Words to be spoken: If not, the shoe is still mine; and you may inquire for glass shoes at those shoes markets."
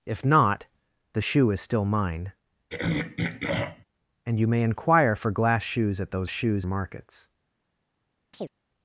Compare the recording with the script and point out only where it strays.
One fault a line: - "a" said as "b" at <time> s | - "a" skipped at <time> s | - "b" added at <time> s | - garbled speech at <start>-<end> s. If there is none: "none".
none